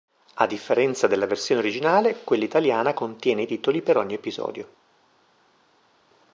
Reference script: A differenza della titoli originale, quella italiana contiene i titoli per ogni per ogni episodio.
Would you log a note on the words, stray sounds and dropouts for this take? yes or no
yes